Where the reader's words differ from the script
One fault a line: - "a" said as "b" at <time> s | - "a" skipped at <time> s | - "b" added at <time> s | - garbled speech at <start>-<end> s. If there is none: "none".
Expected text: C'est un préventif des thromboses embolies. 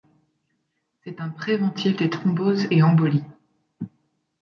- "et" added at 2.7 s